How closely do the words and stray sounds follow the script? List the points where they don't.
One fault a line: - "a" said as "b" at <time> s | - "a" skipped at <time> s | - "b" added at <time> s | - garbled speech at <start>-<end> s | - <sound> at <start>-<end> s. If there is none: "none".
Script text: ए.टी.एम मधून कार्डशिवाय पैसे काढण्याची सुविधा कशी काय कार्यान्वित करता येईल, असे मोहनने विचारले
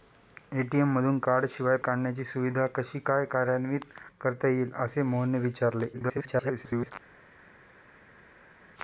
- "पैसे" skipped at 1.8 s
- garbled speech at 5.9-6.9 s